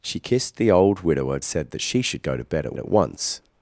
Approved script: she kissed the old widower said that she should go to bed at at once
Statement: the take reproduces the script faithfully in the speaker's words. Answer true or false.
true